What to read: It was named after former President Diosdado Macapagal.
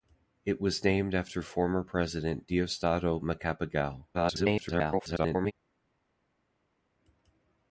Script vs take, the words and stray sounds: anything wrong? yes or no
yes